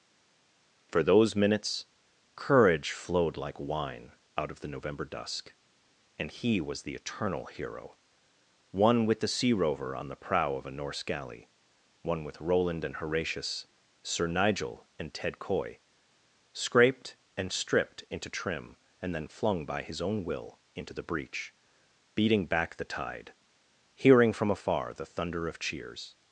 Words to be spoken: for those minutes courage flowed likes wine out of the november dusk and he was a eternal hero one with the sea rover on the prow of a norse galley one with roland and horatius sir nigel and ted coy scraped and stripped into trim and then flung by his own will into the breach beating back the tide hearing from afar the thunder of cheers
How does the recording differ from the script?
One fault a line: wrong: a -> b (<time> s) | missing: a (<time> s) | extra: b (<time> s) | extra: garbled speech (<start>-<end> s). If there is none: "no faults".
wrong: likes -> like (3.4 s)
wrong: a -> the (6.8 s)